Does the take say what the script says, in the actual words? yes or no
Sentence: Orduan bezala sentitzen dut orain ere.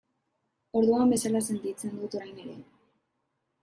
yes